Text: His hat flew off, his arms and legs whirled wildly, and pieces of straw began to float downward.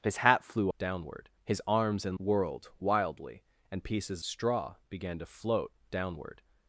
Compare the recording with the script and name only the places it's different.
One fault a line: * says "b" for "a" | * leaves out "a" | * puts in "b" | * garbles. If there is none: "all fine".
* says "downward" for "off"
* leaves out "legs"
* leaves out "of"